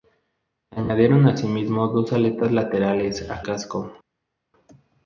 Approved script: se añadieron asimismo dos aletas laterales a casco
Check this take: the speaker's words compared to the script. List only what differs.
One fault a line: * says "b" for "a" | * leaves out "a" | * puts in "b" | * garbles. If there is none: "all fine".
all fine